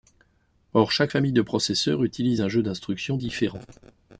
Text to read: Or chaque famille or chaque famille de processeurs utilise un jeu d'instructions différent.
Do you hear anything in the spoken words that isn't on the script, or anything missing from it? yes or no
yes